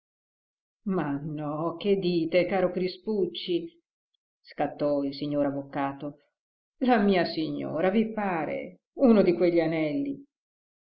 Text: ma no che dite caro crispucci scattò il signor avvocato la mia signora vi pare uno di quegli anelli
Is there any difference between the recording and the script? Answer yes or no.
no